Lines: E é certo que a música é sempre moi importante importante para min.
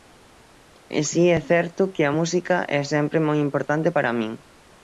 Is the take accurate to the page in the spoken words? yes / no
no